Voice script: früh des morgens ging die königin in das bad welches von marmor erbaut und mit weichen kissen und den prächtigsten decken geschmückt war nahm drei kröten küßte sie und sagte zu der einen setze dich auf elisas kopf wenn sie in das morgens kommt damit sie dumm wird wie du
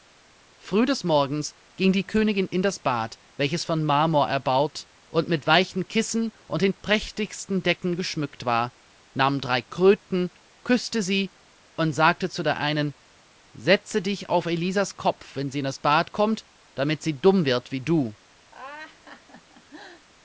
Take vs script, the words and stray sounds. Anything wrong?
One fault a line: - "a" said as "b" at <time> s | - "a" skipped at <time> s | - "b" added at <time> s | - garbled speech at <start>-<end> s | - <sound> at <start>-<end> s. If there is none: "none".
- "morgens" said as "bad" at 15.8 s
- laugh at 18.5-20.1 s